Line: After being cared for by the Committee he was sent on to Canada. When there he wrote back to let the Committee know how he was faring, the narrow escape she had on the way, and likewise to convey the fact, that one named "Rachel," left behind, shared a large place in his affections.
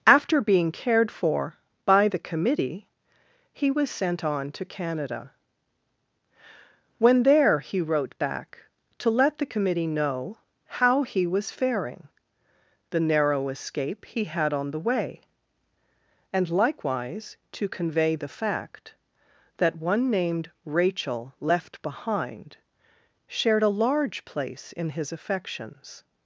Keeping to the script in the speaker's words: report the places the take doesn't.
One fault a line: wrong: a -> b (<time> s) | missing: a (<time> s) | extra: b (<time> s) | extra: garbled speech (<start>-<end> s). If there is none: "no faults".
wrong: she -> he (14.1 s)